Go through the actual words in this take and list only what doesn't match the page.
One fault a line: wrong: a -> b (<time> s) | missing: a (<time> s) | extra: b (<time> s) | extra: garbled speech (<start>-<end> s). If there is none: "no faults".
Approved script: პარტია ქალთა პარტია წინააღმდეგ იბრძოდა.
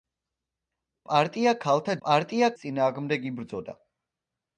no faults